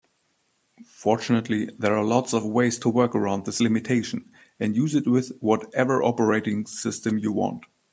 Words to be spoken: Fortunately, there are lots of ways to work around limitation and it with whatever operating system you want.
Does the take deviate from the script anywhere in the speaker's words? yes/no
yes